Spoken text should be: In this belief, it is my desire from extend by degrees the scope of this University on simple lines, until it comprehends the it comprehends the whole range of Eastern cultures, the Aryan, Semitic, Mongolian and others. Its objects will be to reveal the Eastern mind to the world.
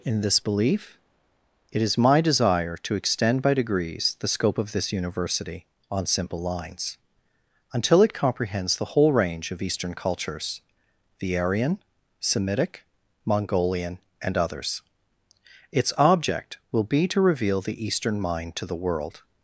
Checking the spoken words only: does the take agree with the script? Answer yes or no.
no